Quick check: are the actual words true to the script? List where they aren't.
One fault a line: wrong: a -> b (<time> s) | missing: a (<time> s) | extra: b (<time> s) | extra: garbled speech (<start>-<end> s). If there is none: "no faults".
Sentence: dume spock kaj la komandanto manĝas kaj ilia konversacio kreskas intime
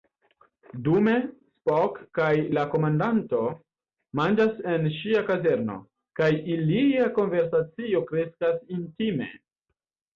extra: en ŝia kazerno (4.8 s)